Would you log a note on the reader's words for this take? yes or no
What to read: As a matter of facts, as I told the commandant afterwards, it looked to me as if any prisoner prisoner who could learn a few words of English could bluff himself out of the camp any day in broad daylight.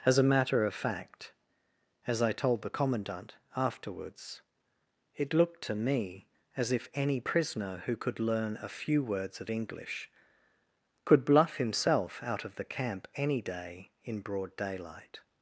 yes